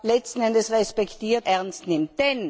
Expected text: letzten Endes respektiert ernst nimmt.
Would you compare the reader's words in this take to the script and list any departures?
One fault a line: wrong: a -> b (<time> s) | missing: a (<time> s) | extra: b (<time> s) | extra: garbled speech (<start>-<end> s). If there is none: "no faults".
no faults